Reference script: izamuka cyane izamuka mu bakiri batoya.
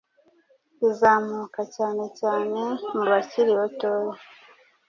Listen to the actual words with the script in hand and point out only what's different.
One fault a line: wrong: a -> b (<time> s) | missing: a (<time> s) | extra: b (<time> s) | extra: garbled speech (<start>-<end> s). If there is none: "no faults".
wrong: izamuka -> cyane (2.2 s)